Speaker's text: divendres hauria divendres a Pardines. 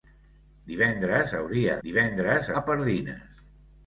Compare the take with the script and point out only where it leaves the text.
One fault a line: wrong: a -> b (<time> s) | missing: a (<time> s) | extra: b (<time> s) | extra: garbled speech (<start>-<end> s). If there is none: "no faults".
no faults